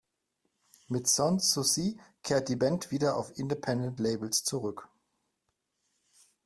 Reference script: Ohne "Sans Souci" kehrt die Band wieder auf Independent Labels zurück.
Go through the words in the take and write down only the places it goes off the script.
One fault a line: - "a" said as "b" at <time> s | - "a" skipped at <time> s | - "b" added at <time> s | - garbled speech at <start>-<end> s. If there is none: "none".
- "Ohne" said as "Mit" at 0.9 s